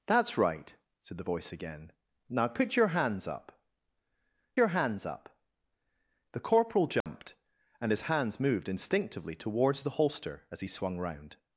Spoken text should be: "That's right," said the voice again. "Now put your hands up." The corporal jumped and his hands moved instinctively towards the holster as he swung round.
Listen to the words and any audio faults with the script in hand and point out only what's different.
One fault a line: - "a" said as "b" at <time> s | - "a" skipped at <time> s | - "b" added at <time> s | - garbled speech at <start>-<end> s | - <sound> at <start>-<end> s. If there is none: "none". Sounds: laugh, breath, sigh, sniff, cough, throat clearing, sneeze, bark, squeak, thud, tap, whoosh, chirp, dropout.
- "your hands up" added at 4.6 s
- dropout at 7.0-7.1 s